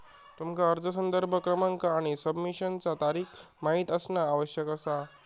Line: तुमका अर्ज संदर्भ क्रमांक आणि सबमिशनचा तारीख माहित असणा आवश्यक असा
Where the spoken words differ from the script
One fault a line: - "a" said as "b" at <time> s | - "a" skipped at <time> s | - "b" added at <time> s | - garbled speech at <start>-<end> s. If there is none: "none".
none